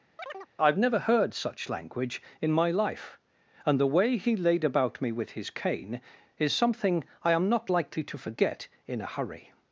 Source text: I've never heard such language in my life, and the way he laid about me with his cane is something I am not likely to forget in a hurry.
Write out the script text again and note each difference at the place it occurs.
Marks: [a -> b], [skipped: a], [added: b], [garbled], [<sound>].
[chirp] I've never heard such language in my life, and the way he laid about me with his cane is something I am not likely to forget in a hurry.